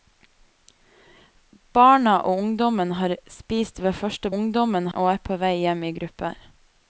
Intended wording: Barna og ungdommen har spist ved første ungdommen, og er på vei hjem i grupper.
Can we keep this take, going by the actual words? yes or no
yes